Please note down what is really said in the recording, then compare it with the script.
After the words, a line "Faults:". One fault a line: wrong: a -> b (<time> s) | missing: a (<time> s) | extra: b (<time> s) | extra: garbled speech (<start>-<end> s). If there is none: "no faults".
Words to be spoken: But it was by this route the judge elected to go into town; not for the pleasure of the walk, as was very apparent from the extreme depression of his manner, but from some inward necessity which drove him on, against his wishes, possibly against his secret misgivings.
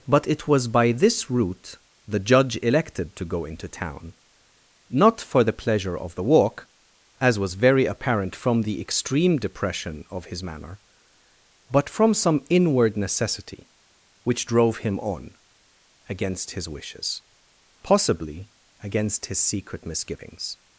But it was by this route the judge elected to go into town; not for the pleasure of the walk, as was very apparent from the extreme depression of his manner, but from some inward necessity which drove him on, against his wishes, possibly against his secret misgivings.
Faults:
no faults